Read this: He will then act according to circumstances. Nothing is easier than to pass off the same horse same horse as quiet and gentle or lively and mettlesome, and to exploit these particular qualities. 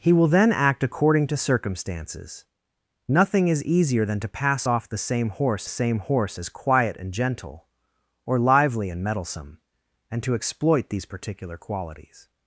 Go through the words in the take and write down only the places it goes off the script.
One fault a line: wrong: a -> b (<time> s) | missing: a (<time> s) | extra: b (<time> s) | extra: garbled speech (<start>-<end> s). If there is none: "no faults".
no faults